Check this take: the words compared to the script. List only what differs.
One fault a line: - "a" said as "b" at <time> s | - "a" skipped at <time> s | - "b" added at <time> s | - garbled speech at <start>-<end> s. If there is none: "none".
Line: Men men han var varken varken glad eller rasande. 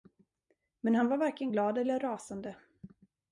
- "men" skipped at 0.9 s
- "varken" skipped at 1.5 s